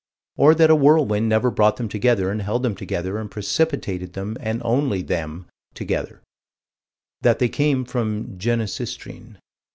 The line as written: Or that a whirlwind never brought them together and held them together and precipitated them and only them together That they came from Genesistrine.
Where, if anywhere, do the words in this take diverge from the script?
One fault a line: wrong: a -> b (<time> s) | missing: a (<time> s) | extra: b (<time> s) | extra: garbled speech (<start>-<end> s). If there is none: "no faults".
no faults